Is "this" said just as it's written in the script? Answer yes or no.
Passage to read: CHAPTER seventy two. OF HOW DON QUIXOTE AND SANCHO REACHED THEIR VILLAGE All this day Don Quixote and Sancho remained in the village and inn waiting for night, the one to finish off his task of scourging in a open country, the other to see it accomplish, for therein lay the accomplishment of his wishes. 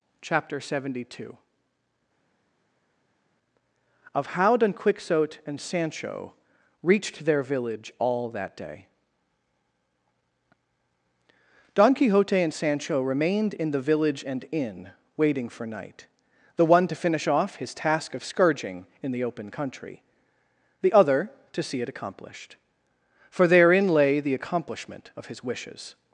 no